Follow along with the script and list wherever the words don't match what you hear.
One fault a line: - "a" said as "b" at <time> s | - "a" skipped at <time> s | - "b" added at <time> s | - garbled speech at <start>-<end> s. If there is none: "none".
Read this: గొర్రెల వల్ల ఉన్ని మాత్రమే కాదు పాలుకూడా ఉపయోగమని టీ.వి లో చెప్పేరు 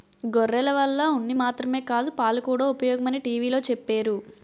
none